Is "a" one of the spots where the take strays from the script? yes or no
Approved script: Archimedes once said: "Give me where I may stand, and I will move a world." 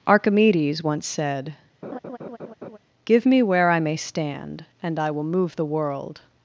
yes